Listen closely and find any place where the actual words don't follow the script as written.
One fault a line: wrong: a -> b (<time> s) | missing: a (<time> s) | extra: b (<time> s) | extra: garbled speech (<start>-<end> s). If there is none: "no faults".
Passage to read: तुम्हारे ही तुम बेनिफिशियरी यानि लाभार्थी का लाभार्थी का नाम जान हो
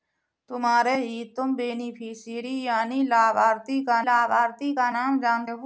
no faults